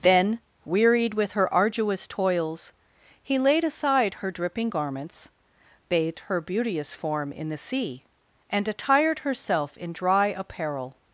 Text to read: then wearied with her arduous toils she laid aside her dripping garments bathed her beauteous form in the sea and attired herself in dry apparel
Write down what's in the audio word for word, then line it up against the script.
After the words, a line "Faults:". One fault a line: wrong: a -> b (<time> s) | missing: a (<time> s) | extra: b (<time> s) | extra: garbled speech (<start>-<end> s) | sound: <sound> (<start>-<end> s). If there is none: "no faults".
then wearied with her arduous toils he laid aside her dripping garments bathed her beauteous form in the sea and attired herself in dry apparel
Faults:
wrong: she -> he (3.2 s)